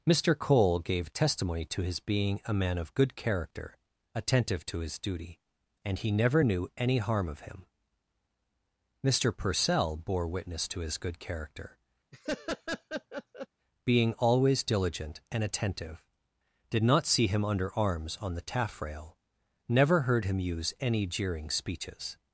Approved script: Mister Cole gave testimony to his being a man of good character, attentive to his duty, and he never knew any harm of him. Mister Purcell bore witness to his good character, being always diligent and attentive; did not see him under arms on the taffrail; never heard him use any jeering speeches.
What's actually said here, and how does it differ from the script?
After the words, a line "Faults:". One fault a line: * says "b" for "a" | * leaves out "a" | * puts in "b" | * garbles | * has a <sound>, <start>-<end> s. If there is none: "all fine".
Mister Cole gave testimony to his being a man of good character, attentive to his duty, and he never knew any harm of him. Mister Purcell bore witness to his good character, being always diligent and attentive; did not see him under arms on the taffrail; never heard him use any jeering speeches.
Faults:
* has a laugh, 12.1-13.5 s